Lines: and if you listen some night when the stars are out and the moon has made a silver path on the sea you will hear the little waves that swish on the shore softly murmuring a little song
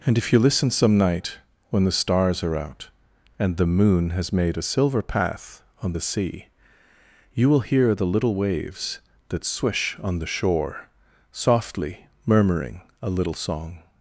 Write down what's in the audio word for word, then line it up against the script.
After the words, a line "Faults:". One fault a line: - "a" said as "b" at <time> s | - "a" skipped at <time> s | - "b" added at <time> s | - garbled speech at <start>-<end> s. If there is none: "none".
and if you listen some night when the stars are out and the moon has made a silver path on the sea you will hear the little waves that swish on the shore softly murmuring a little song
Faults:
none